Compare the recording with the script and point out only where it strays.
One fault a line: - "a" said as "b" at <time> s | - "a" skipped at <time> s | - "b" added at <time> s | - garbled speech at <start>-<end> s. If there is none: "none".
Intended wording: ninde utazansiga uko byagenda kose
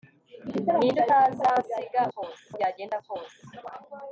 - "uko" said as "kose" at 2.1 s